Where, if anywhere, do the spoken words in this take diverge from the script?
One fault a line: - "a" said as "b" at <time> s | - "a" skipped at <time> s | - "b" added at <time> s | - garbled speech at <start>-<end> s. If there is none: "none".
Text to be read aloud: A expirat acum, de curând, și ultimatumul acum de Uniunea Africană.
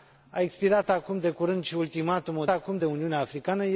none